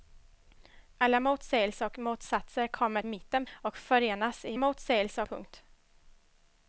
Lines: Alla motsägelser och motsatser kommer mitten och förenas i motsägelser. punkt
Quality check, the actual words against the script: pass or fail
pass